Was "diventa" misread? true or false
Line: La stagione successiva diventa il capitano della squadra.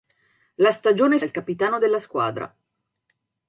true